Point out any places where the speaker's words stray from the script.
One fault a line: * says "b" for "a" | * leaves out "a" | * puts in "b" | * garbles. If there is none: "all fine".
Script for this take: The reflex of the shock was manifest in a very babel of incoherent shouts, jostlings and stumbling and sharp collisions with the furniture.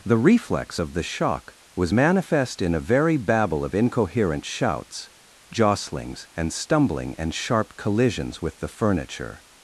all fine